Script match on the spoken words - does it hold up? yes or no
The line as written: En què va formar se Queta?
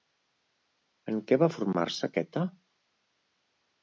yes